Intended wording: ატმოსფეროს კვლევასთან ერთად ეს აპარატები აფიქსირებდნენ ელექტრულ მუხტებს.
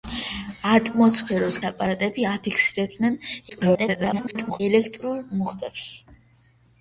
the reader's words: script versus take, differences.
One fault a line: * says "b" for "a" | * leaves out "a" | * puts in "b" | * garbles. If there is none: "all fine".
* leaves out "კვლევასთან ერთად ეს"
* garbles